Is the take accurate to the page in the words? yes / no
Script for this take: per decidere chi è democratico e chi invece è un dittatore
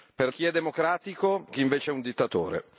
no